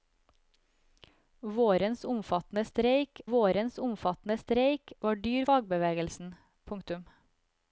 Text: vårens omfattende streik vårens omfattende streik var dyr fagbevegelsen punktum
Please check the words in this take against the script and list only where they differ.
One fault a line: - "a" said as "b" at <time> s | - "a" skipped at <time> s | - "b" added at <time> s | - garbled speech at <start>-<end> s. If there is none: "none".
none